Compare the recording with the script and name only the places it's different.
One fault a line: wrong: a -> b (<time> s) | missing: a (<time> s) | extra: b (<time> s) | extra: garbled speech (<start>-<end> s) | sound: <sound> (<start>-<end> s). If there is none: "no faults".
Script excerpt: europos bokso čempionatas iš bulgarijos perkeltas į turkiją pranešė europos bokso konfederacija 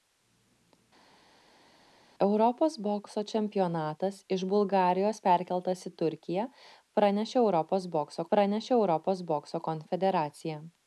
extra: pranešė europos bokso (8.3 s)